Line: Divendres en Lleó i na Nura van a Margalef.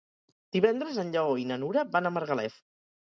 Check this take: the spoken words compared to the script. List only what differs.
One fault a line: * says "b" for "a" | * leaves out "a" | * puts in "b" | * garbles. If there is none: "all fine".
all fine